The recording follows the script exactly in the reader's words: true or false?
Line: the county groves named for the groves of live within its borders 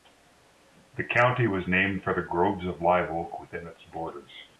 false